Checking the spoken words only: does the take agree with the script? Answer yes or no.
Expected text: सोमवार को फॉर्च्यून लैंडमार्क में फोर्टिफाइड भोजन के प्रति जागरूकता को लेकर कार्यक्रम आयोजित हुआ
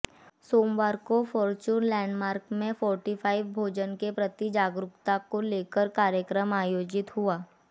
yes